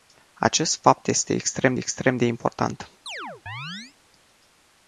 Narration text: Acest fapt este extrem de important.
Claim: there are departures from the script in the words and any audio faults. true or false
true